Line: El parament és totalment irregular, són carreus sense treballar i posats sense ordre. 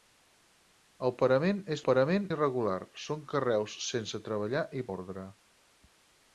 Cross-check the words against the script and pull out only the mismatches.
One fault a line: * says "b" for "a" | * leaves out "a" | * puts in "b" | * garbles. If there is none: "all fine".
* says "parament" for "totalment"
* leaves out "posats sense"